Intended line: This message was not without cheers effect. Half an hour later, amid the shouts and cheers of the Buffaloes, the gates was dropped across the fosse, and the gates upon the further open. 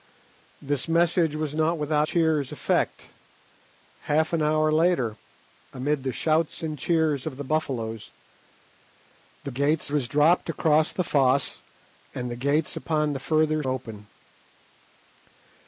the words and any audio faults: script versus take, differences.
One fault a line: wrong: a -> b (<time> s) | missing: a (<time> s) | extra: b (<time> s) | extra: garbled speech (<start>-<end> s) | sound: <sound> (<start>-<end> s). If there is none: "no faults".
no faults